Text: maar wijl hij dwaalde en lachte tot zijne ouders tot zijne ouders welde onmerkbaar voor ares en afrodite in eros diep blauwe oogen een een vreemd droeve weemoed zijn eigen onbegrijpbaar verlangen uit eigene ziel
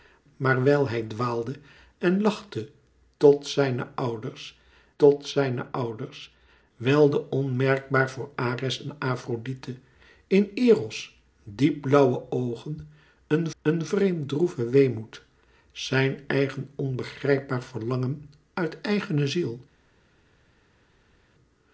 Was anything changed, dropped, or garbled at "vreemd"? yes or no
no